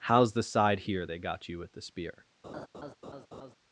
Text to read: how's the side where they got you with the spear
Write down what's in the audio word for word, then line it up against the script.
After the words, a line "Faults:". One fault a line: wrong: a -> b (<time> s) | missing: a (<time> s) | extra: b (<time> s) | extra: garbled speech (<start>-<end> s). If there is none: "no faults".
how's the side here they got you with the spear
Faults:
wrong: where -> here (0.8 s)